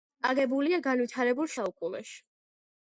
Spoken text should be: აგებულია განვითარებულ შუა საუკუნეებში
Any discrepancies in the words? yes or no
yes